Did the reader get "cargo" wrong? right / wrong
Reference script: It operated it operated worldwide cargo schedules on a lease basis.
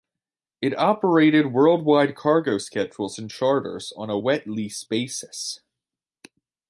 right